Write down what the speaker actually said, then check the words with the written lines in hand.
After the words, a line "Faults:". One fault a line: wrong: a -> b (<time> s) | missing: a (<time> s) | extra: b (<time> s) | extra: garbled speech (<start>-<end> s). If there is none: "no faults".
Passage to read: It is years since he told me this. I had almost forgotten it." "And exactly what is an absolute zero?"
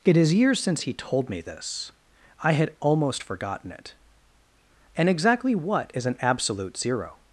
It is years since he told me this. I had almost forgotten it." "And exactly what is an absolute zero?"
Faults:
no faults